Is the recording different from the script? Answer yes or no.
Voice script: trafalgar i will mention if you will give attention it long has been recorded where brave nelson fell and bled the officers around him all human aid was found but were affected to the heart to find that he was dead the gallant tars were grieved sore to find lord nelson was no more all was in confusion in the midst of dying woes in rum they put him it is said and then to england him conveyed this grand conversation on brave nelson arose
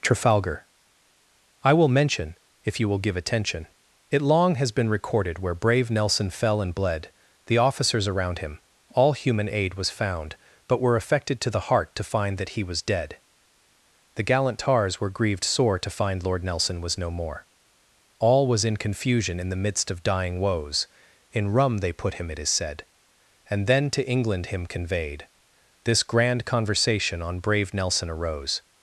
no